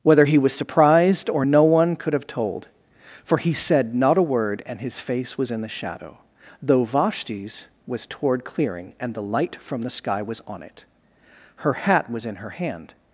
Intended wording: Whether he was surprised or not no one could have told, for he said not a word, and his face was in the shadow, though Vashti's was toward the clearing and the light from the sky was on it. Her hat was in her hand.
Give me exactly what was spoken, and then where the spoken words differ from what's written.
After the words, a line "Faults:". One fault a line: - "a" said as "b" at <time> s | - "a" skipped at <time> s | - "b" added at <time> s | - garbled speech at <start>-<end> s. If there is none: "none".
Whether he was surprised or no one could have told, for he said not a word, and his face was in the shadow, though Vashti's was toward clearing and the light from the sky was on it. Her hat was in her hand.
Faults:
- "not" skipped at 1.4 s
- "the" skipped at 8.4 s